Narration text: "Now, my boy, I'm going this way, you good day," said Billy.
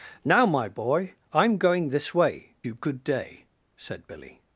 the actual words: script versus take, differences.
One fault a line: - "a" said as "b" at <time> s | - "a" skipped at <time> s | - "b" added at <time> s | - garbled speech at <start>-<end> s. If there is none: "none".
none